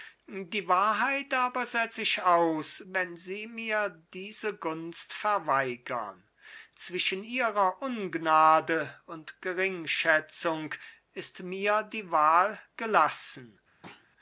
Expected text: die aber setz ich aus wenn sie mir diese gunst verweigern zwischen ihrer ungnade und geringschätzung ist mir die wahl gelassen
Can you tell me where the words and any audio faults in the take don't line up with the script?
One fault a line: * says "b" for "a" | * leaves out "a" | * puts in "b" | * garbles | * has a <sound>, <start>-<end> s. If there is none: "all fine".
* puts in "wahrheit"
* has a thud, 13.8-14.1 s